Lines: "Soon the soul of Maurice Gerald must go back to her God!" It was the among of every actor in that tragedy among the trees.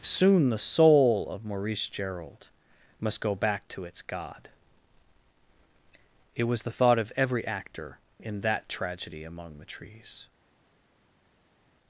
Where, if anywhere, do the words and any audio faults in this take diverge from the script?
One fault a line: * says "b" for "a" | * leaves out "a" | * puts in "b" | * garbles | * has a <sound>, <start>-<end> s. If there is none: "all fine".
* says "its" for "her"
* says "thought" for "among"